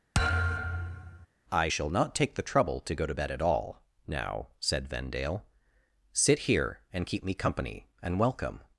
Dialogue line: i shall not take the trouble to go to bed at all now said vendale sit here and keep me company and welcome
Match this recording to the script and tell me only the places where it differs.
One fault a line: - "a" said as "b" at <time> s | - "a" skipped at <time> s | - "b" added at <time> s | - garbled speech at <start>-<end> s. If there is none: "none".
none